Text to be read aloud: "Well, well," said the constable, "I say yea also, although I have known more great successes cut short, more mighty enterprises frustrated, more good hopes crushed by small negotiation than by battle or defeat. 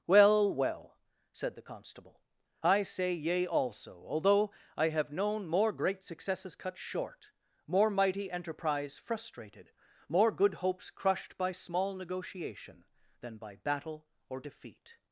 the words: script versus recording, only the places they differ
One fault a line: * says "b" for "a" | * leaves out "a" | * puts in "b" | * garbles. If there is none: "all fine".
* says "enterprise" for "enterprises"